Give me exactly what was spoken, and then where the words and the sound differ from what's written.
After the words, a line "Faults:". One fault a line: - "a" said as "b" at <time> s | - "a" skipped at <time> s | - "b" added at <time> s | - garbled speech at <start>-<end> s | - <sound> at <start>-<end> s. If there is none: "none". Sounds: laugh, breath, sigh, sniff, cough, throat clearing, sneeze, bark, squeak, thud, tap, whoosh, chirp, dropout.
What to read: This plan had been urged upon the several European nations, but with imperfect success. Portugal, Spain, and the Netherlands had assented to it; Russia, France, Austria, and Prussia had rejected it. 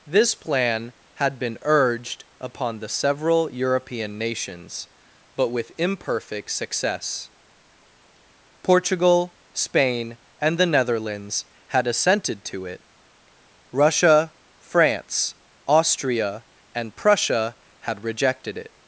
This plan had been urged upon the several European nations, but with imperfect success. Portugal, Spain, and the Netherlands had assented to it; Russia, France, Austria, and Prussia had rejected it.
Faults:
none